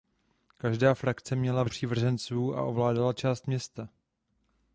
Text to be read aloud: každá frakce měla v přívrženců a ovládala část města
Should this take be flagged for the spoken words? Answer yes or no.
no